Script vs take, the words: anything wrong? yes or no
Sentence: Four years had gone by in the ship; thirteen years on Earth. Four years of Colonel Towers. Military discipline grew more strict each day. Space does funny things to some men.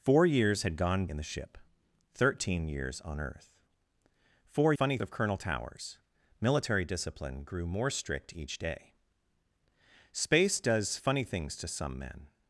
yes